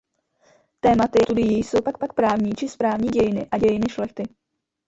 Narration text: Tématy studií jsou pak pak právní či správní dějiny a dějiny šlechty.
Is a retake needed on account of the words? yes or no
no